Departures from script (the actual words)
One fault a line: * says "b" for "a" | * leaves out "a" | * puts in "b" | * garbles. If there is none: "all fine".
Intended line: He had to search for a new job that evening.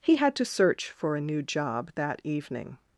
all fine